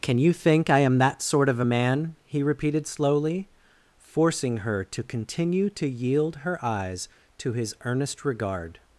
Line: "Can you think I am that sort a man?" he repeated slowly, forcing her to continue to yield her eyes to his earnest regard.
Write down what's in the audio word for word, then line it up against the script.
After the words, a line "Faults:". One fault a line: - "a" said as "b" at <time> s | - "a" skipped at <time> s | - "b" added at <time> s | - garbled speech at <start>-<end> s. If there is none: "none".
"Can you think I am that sort of a man?" he repeated slowly, forcing her to continue to yield her eyes to his earnest regard.
Faults:
- "of" added at 1.5 s